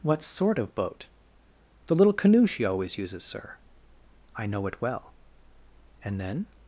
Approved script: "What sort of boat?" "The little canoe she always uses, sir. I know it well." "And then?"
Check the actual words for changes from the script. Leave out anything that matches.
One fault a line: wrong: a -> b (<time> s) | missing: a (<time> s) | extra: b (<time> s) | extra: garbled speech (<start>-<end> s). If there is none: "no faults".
no faults